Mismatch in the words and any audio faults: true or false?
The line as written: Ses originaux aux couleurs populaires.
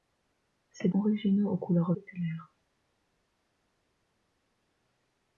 false